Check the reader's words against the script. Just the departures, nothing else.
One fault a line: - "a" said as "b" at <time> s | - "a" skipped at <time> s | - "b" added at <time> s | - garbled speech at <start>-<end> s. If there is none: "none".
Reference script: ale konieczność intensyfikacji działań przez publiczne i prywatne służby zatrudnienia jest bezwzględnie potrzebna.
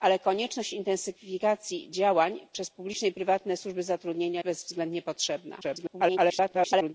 - "jest" skipped at 4.4 s
- garbled speech at 5.6-6.9 s